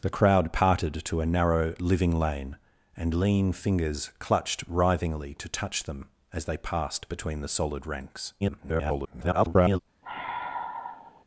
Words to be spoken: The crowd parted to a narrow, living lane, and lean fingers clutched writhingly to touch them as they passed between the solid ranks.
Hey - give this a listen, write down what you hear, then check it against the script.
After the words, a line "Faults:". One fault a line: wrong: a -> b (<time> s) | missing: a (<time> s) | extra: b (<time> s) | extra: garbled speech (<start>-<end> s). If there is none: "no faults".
The crowd parted to a narrow, living lane, and lean fingers clutched writhingly to touch them as they passed between the solid ranks. [garbled]
Faults:
extra: garbled speech (8.4-9.8 s)